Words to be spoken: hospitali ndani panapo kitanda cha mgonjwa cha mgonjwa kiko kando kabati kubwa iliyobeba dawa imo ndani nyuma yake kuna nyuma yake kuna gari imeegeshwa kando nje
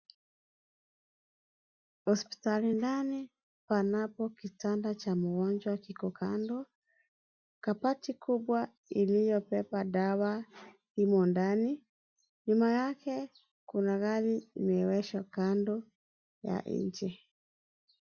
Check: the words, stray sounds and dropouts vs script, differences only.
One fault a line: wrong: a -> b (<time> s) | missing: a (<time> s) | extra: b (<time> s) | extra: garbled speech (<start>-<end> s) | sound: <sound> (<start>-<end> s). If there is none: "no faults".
missing: cha mgonjwa (5.8 s)
missing: nyuma yake kuna (14.0 s)
extra: ya (16.4 s)